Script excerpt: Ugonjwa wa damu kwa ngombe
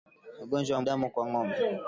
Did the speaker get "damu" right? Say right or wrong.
right